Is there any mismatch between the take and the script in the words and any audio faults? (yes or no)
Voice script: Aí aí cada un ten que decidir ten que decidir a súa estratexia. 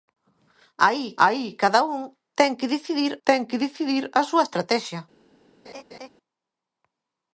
yes